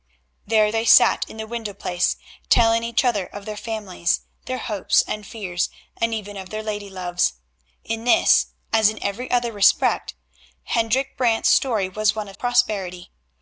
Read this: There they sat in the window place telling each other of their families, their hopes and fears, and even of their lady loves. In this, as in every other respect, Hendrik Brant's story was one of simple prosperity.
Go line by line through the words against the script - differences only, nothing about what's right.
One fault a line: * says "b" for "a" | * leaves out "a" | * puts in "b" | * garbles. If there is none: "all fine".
* leaves out "simple"